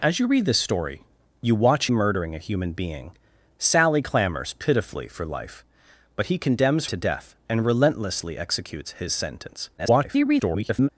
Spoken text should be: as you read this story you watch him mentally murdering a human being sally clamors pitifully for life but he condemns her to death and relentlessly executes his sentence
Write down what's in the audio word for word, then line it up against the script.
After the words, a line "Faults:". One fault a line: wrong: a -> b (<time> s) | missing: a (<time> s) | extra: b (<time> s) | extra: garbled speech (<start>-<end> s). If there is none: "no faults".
as you read this story you watch murdering a human being sally clamors pitifully for life but he condemns to death and relentlessly executes his sentence [garbled]
Faults:
missing: him mentally (1.9 s)
missing: her (6.8 s)
extra: garbled speech (9.8-10.9 s)